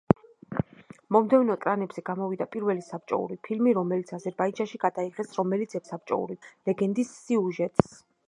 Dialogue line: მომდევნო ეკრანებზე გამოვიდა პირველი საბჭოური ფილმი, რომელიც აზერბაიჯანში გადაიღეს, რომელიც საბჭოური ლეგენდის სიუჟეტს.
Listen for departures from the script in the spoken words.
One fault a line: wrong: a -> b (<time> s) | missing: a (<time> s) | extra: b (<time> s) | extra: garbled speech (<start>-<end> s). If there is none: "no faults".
no faults